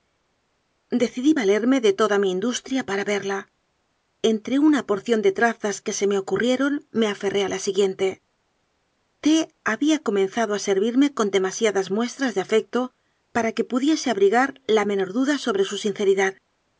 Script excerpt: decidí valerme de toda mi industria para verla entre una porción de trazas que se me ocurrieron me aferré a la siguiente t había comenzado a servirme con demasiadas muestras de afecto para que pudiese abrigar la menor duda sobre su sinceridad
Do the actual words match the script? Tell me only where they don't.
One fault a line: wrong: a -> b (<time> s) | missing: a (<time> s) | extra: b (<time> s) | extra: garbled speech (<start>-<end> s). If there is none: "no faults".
no faults